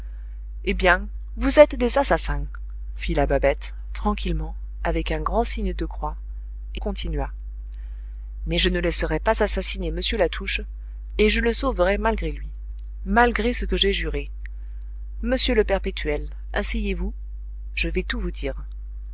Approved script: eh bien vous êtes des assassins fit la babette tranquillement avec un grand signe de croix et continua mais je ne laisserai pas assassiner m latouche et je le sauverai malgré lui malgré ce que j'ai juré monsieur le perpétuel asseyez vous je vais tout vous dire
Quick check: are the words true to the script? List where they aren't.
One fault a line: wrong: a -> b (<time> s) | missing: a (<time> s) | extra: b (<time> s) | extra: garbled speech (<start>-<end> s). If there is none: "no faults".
no faults